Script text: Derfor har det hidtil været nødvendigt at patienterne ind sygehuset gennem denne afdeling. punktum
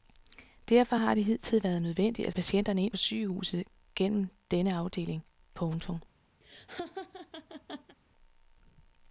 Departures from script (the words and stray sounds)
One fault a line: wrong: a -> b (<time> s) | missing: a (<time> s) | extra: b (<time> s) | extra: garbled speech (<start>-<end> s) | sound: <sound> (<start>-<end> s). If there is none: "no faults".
sound: laugh (6.4-8.0 s)